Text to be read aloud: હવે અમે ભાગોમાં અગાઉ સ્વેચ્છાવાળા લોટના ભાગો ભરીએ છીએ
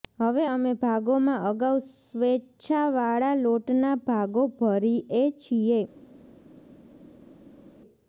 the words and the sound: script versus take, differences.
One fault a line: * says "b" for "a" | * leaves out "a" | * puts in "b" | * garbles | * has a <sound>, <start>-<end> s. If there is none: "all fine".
all fine